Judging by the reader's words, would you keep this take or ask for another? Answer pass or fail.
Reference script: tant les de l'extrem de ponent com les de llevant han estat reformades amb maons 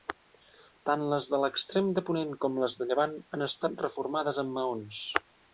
pass